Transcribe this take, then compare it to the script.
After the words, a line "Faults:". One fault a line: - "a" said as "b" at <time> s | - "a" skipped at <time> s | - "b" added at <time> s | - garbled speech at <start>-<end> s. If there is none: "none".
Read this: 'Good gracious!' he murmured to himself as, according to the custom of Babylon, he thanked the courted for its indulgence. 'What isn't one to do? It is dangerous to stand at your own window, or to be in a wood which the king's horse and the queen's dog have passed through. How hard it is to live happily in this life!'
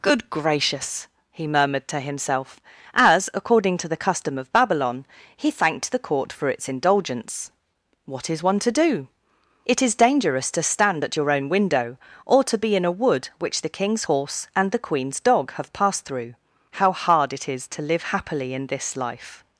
'Good gracious!' he murmured to himself as, according to the custom of Babylon, he thanked the court for its indulgence. 'What is one to do? It is dangerous to stand at your own window, or to be in a wood which the king's horse and the queen's dog have passed through. How hard it is to live happily in this life!'
Faults:
- "courted" said as "court" at 6.0 s
- "isn't" said as "is" at 8.3 s